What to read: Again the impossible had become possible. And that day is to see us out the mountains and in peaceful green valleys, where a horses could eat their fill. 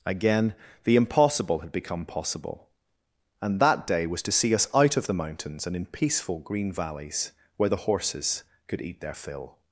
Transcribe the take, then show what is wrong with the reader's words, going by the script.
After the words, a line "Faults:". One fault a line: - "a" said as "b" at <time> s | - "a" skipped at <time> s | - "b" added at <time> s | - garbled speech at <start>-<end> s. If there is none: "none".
Again the impossible had become possible. And that day was to see us out of the mountains and in peaceful green valleys, where the horses could eat their fill.
Faults:
- "is" said as "was" at 4.0 s
- "of" added at 5.0 s
- "a" said as "the" at 7.7 s